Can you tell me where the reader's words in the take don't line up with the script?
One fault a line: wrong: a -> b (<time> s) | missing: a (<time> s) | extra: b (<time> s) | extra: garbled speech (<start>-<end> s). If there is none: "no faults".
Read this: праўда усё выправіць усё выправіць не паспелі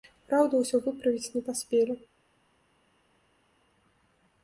missing: усё выправіць (1.3 s)